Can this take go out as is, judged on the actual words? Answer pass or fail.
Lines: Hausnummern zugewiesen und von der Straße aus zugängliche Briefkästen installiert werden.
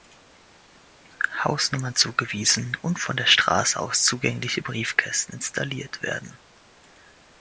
pass